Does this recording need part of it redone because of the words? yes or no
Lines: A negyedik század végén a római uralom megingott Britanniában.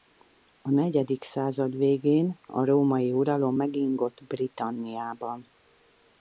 no